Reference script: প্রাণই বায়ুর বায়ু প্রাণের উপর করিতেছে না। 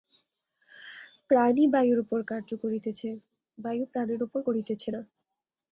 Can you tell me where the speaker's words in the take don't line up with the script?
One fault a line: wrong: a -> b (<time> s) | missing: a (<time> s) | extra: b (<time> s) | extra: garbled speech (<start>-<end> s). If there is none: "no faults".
extra: উপর কার্য করিতেছে (2.0 s)